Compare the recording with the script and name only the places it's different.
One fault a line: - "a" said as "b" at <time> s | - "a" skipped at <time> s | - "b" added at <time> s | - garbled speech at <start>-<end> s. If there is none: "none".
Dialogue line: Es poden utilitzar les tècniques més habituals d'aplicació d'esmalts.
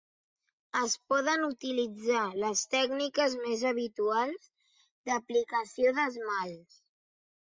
none